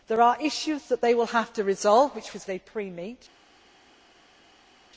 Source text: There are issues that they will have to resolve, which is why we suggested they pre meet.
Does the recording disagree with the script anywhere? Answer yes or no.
yes